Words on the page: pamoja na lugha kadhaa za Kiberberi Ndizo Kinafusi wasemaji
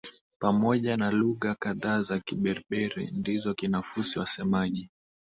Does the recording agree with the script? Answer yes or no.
yes